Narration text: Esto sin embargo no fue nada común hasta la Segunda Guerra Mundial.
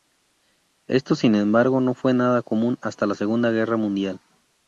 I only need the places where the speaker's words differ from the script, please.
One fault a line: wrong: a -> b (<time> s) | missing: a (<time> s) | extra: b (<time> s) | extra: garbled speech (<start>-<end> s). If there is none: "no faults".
no faults